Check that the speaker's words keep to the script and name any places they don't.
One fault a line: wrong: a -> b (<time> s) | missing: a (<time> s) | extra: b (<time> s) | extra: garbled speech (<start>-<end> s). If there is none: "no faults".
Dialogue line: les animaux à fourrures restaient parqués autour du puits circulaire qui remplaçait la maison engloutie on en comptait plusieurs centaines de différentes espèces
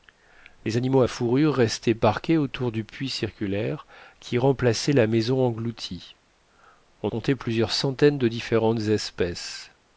missing: en (7.1 s)